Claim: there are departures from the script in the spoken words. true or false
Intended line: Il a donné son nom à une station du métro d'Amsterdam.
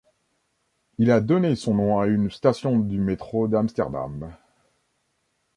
false